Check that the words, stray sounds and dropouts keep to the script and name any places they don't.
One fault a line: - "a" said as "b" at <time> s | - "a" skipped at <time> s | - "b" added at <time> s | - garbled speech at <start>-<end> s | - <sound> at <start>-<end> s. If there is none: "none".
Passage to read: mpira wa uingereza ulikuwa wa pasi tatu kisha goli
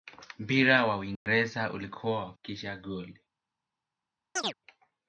- dropout at 1.2-1.3 s
- "pasi tatu" skipped at 2.3 s
- chirp at 4.4-4.5 s